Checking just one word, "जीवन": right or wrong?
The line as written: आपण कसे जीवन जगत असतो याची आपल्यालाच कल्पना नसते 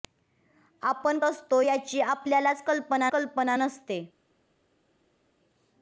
wrong